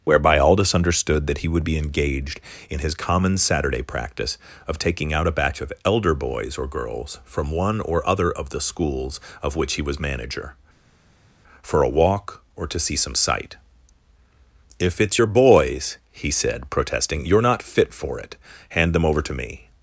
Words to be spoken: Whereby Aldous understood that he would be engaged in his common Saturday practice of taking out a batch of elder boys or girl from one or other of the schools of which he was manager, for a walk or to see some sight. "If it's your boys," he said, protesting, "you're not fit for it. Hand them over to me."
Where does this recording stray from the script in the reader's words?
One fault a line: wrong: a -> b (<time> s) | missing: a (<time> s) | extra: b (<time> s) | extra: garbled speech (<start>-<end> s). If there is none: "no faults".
wrong: girl -> girls (6.7 s)